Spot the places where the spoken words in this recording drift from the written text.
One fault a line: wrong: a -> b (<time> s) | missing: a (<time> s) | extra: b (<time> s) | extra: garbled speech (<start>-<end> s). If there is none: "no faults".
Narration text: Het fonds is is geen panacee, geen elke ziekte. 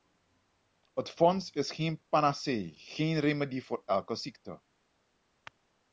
missing: is (1.7 s)
extra: remedie voor (3.2 s)